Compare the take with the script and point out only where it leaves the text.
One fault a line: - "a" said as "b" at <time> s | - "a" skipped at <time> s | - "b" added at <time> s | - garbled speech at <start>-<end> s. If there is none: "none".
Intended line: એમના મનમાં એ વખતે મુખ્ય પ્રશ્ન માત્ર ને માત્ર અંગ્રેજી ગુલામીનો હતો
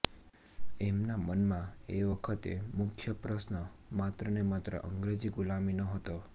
none